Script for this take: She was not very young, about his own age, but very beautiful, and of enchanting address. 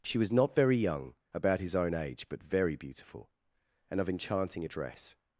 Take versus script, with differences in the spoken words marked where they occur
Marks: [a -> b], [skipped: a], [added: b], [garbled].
She was not very young, about his own age, but very beautiful, and of enchanting address.